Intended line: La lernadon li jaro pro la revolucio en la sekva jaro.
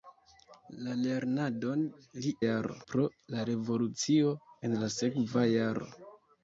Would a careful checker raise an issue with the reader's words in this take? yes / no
no